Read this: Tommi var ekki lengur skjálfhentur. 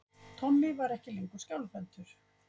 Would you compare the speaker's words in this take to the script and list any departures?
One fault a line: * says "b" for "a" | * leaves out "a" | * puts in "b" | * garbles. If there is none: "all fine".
all fine